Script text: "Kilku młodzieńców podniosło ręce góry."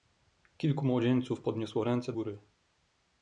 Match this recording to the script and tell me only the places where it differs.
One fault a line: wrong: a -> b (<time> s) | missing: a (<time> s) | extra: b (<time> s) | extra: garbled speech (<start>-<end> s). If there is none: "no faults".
no faults